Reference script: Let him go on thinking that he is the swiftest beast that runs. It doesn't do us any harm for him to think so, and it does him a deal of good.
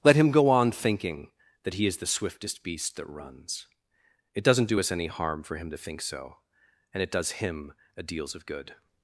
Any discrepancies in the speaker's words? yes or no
yes